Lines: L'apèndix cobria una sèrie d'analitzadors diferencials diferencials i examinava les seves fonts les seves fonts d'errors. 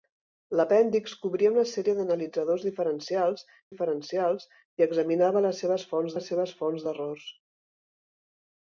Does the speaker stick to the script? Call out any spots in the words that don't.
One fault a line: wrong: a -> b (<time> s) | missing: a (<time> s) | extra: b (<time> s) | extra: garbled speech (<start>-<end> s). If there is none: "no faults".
no faults